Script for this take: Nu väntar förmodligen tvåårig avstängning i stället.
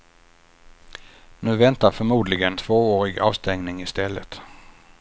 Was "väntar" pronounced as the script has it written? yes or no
yes